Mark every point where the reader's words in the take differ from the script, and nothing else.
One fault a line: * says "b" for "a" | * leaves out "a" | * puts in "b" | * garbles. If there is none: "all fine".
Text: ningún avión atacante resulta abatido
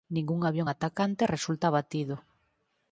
all fine